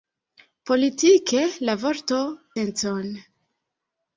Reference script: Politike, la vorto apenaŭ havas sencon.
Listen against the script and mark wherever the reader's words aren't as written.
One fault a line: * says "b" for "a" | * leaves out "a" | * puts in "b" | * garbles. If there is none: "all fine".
* leaves out "apenaŭ havas"